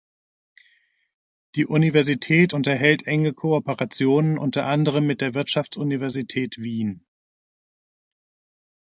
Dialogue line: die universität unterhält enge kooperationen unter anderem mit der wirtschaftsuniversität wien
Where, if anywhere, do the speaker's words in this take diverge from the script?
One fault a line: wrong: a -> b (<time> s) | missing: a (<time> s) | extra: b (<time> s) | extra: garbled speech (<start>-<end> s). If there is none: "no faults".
no faults